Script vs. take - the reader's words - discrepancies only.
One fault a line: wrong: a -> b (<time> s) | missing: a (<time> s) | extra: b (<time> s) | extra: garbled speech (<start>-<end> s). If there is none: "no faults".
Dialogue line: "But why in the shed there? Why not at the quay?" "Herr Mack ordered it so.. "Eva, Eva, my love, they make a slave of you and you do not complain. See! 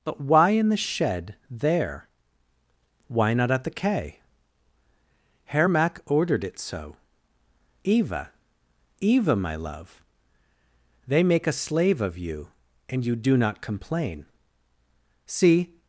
no faults